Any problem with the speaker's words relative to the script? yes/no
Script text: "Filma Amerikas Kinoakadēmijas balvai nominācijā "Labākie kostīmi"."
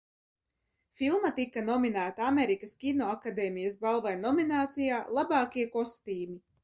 yes